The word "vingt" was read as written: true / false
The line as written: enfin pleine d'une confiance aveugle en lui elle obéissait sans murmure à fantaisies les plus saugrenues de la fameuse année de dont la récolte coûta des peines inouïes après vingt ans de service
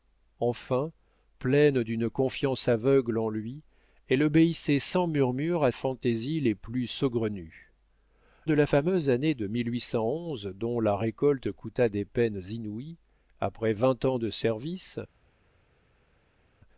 true